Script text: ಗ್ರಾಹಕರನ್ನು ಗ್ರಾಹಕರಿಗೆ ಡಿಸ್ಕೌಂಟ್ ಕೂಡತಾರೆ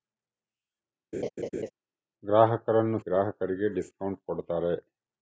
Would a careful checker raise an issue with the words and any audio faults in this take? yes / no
yes